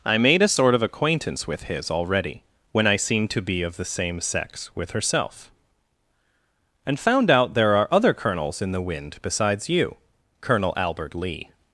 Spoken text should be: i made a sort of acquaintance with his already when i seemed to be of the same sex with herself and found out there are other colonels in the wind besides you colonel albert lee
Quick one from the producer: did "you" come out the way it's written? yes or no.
yes